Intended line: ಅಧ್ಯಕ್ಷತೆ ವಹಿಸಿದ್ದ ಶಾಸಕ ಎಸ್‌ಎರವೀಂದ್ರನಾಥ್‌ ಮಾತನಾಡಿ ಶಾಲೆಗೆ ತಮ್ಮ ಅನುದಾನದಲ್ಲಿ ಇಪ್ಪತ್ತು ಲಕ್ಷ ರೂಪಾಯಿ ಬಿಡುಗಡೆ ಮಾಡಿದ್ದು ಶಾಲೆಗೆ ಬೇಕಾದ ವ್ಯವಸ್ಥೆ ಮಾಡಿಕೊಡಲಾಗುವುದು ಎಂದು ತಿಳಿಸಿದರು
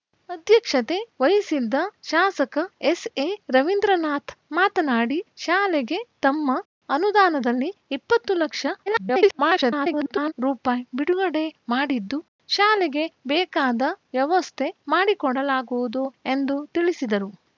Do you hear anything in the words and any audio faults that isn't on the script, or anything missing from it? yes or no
yes